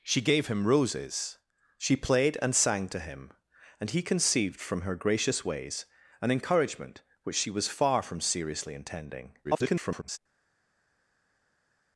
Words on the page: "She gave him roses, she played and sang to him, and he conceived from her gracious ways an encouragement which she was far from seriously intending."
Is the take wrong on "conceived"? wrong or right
right